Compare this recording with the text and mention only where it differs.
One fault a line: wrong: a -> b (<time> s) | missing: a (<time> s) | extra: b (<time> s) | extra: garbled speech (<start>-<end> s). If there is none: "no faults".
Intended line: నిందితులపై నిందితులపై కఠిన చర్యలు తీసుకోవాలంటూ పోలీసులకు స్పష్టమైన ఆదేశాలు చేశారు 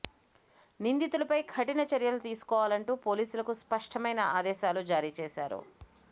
missing: నిందితులపై (1.4 s)
extra: జారీ (4.9 s)